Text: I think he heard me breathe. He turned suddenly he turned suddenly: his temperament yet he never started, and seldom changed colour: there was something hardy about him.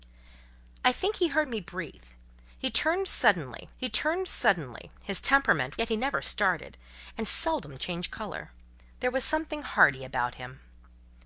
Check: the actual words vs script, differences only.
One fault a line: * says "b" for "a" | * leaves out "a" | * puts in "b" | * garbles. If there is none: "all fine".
all fine